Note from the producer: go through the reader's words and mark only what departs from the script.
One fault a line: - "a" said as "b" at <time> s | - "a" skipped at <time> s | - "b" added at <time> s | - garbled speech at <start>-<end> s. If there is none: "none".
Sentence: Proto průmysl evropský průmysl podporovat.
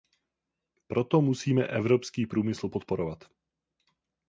- "průmysl" said as "musíme" at 1.2 s